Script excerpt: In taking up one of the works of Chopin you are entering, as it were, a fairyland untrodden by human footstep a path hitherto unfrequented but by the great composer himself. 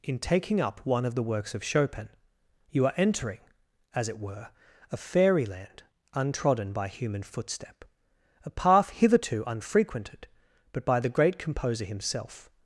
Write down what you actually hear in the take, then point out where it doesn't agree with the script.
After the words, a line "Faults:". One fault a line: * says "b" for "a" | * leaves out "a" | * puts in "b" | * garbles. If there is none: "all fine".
In taking up one of the works of Chopin you are entering, as it were, a fairyland untrodden by human footstep a path hitherto unfrequented but by the great composer himself.
Faults:
all fine